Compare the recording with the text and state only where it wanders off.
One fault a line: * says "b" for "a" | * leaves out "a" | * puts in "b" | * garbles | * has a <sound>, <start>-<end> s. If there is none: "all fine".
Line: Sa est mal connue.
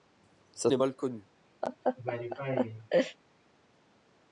* has a laugh, 1.6-3.2 s